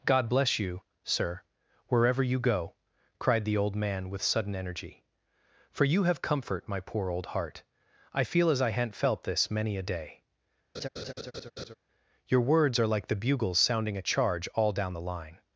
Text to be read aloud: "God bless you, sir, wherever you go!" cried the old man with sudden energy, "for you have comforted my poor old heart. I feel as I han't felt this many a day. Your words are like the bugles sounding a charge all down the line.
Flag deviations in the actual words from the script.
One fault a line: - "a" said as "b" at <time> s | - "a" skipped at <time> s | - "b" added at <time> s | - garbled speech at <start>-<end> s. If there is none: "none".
- "comforted" said as "comfort" at 6.2 s